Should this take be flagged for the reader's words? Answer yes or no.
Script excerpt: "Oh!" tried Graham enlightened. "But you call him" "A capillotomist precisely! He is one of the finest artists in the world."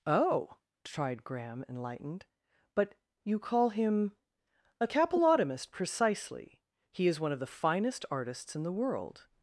no